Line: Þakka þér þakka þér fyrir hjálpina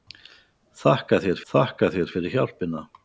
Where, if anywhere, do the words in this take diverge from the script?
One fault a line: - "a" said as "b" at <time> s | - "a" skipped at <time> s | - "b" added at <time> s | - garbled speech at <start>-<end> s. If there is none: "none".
none